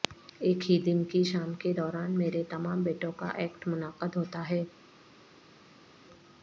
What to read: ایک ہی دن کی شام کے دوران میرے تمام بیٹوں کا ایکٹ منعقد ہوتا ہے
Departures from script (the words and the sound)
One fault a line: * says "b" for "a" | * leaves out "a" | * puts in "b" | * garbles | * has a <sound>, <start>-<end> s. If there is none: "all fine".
all fine